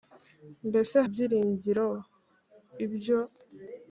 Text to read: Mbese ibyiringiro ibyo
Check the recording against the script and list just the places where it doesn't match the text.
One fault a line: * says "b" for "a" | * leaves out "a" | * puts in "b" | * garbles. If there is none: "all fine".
all fine